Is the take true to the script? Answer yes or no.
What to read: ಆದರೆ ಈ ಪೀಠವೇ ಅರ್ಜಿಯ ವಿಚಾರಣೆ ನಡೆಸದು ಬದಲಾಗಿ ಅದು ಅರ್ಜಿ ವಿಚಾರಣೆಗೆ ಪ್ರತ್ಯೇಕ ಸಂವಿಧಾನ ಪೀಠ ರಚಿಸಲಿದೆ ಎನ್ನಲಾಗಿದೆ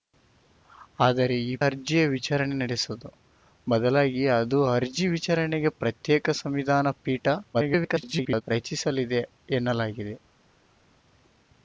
no